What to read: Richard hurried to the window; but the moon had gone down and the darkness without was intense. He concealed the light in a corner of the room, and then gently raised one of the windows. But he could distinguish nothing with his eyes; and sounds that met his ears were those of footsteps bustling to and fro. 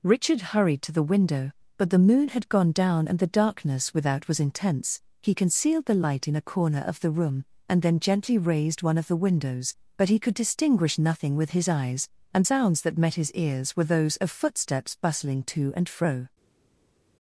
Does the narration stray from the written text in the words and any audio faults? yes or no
no